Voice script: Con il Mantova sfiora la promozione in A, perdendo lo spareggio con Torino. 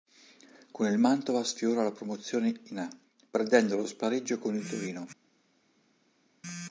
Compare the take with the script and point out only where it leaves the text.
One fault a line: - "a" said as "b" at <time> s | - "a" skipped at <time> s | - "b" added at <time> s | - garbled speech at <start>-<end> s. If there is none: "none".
- "il" added at 4.5 s